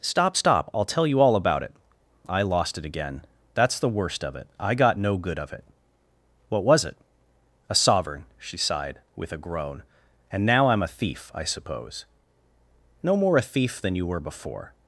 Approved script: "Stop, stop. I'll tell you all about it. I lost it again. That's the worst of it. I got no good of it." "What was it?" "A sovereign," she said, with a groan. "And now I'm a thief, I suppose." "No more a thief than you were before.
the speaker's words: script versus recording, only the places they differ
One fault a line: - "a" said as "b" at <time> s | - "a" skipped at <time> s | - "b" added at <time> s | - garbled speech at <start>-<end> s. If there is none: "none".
- "said" said as "sighed" at 8.6 s